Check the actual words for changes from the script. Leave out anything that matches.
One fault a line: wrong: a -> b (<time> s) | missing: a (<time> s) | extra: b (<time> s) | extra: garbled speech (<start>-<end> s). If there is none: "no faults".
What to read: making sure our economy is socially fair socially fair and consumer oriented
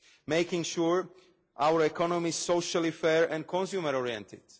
missing: socially fair (3.3 s)